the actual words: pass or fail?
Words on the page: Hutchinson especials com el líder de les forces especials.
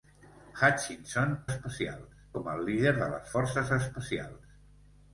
pass